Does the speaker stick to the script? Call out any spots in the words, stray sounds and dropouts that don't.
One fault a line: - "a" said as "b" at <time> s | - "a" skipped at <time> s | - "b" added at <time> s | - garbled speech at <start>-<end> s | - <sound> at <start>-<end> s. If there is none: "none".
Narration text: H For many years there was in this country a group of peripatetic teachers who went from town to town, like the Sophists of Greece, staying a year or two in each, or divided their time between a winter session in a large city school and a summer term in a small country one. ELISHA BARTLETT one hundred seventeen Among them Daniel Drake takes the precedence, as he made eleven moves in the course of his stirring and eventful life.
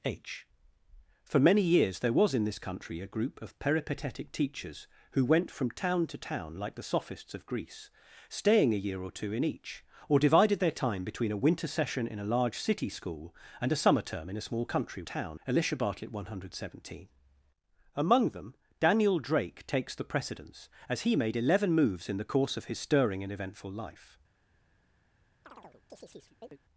- "one" said as "town" at 15.0 s
- chirp at 25.4-26.6 s